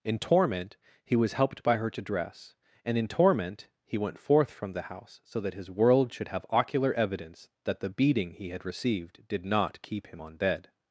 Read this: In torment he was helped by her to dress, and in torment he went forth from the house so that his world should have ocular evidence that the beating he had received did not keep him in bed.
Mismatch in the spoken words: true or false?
true